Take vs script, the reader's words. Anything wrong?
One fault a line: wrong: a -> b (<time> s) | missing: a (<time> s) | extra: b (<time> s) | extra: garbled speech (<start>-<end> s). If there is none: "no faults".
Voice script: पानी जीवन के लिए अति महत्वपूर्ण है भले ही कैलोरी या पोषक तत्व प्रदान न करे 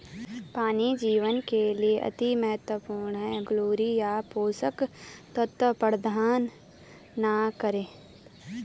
missing: भले ही (3.4 s)